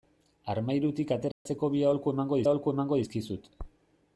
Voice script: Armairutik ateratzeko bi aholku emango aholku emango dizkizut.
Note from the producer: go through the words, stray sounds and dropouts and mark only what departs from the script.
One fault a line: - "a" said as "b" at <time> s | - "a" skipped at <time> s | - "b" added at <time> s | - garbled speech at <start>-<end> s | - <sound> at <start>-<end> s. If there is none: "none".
- dropout at 1.3-1.5 s